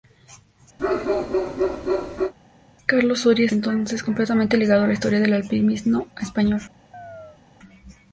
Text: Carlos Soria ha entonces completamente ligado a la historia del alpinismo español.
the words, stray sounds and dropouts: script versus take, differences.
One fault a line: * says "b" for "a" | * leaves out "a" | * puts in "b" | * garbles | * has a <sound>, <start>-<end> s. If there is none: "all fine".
* has a bark, 0.8-2.3 s
* has a chirp, 6.9-7.4 s